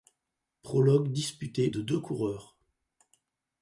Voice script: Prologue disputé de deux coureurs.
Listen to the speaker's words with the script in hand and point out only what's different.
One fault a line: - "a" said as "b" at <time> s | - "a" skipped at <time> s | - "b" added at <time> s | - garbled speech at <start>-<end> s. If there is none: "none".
none